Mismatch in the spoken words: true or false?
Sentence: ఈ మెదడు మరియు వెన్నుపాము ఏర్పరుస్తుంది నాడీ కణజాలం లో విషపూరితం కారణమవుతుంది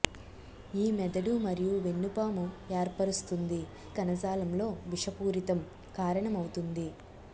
true